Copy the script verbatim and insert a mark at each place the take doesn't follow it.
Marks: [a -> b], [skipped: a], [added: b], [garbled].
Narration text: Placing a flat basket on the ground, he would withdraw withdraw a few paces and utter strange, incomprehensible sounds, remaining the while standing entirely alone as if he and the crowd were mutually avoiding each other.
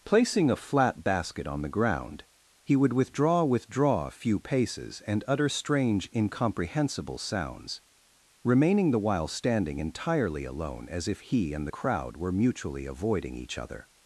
Placing a flat basket on the ground, he would withdraw withdraw a few paces and utter strange, incomprehensible sounds, remaining the while standing entirely alone as if he and the crowd were mutually avoiding each other.